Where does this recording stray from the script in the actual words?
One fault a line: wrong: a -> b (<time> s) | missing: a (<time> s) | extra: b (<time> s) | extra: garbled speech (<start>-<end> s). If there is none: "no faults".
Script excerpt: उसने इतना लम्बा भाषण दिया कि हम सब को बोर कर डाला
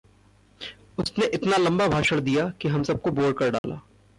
no faults